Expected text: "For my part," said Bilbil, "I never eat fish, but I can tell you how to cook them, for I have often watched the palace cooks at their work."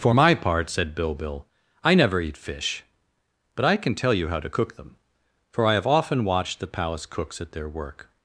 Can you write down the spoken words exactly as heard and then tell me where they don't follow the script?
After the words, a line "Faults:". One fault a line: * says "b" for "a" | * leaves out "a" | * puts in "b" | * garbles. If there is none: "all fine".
"For my part," said Bilbil, "I never eat fish, but I can tell you how to cook them, for I have often watched the palace cooks at their work."
Faults:
all fine